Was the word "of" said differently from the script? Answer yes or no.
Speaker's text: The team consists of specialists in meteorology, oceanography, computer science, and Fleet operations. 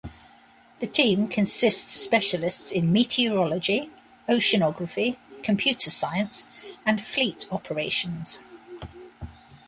yes